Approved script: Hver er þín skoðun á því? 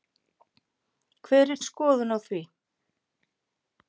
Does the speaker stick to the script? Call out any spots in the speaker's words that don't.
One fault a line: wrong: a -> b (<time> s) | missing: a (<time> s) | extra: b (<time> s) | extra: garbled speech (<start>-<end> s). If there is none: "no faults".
missing: þín (1.6 s)